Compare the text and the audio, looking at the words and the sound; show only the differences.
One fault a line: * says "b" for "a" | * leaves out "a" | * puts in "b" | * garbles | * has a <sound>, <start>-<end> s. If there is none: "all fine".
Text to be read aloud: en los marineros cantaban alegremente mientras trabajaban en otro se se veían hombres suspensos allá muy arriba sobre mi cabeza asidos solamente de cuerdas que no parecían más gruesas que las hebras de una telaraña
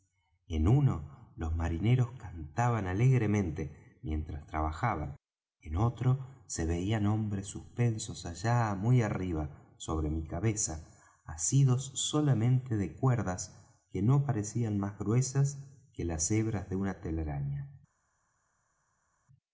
* puts in "uno"
* leaves out "se"